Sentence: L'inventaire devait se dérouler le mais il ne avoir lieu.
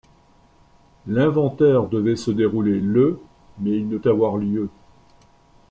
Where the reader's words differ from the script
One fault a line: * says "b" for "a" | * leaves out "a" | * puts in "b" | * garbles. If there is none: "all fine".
all fine